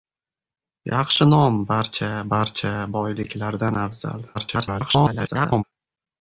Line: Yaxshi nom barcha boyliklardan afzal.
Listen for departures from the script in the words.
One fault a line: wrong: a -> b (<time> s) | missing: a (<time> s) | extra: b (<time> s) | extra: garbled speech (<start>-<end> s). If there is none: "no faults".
extra: barcha (2.3 s)
extra: garbled speech (4.3-5.6 s)